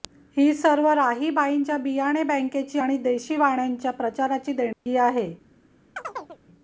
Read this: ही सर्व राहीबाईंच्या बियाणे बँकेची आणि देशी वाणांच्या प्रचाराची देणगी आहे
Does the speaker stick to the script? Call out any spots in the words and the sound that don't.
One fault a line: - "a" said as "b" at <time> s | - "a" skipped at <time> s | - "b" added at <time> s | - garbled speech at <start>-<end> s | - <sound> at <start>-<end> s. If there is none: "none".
- dropout at 4.7-4.9 s
- chirp at 6.0-6.4 s